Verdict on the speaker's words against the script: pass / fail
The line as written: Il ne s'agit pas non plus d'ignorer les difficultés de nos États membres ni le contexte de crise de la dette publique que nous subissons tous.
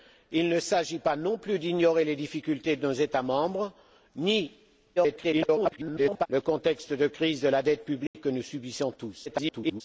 fail